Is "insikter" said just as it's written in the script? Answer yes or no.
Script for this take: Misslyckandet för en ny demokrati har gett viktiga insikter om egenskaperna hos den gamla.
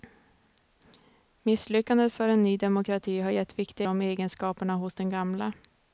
no